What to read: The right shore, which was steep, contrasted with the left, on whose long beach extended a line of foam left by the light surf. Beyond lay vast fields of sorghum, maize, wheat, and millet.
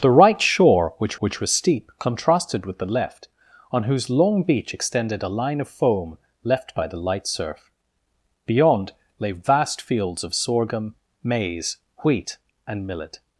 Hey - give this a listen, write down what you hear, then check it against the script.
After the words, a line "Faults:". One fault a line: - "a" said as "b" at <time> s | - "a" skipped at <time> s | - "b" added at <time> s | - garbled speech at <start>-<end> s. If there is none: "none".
The right shore, which which was steep, contrasted with the left, on whose long beach extended a line of foam left by the light surf. Beyond lay vast fields of sorghum, maize, wheat, and millet.
Faults:
- "which" added at 1.2 s